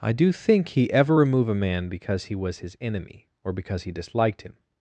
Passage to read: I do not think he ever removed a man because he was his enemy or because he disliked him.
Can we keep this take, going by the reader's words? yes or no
no